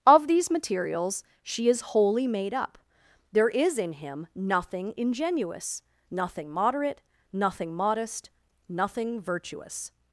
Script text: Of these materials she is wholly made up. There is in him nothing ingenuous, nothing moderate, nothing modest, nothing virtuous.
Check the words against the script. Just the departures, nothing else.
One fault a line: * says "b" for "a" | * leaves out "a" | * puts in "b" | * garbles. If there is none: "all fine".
all fine